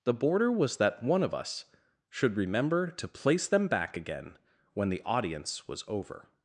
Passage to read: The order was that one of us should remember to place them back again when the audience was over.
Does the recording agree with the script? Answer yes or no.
no